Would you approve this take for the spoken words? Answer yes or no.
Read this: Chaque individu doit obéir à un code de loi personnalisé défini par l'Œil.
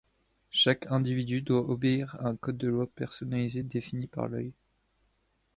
yes